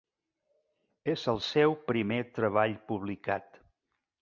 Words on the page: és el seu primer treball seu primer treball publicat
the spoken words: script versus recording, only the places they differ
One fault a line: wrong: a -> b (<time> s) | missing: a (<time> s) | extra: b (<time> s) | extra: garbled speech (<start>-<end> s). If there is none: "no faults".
missing: seu primer treball (2.8 s)